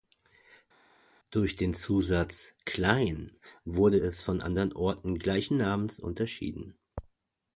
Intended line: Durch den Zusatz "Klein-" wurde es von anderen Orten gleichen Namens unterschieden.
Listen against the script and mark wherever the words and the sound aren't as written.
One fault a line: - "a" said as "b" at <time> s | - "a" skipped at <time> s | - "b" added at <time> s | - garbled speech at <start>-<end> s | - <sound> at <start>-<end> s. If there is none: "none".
none